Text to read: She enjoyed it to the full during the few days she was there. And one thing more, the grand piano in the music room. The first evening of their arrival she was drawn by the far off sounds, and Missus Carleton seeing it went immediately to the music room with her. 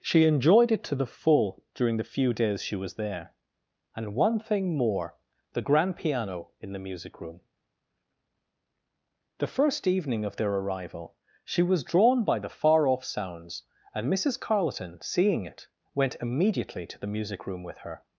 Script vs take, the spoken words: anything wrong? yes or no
no